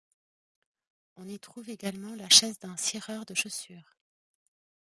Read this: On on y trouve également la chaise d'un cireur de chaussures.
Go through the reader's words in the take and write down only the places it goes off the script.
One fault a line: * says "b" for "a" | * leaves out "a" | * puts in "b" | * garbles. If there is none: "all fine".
* leaves out "on"